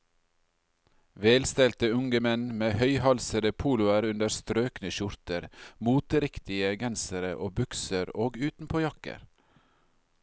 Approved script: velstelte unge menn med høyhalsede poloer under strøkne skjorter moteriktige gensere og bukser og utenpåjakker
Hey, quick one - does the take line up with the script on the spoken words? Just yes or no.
yes